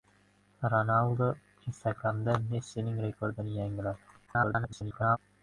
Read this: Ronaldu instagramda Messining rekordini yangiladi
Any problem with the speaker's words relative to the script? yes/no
yes